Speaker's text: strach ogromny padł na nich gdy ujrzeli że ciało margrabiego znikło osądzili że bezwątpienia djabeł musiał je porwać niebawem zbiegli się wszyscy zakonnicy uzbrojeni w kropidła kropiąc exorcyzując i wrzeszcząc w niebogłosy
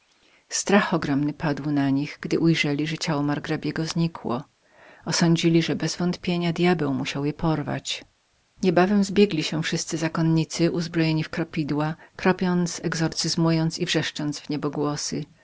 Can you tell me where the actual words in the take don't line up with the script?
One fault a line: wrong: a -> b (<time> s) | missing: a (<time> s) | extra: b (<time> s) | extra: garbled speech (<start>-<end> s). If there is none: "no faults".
no faults